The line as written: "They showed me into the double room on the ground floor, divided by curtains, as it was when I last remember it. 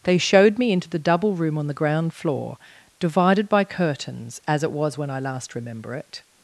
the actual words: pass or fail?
pass